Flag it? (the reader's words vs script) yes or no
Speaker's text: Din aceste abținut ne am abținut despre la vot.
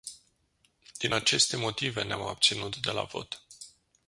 yes